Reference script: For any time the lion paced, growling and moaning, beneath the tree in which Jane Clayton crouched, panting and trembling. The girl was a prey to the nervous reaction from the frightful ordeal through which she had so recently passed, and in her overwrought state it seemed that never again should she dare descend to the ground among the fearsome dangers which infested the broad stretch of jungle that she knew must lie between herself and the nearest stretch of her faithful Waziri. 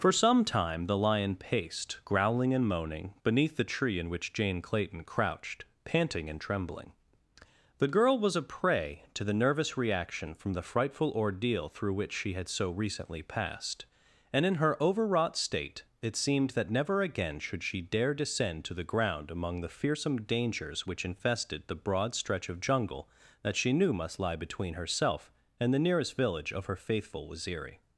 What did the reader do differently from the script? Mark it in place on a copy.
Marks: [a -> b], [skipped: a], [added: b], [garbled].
For [any -> some] time the lion paced, growling and moaning, beneath the tree in which Jane Clayton crouched, panting and trembling. The girl was a prey to the nervous reaction from the frightful ordeal through which she had so recently passed, and in her overwrought state it seemed that never again should she dare descend to the ground among the fearsome dangers which infested the broad stretch of jungle that she knew must lie between herself and the nearest [stretch -> village] of her faithful Waziri.